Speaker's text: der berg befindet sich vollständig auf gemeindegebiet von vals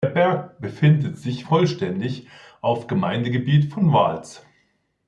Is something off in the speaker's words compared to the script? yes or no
no